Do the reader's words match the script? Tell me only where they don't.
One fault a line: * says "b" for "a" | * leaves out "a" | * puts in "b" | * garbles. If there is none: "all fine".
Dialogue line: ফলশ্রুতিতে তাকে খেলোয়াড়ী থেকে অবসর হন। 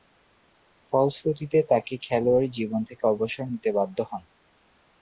* puts in "জীবন"
* puts in "নিতে বাধ্য"